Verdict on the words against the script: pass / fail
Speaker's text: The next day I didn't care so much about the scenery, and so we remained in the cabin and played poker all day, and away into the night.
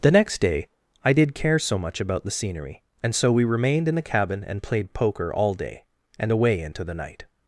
fail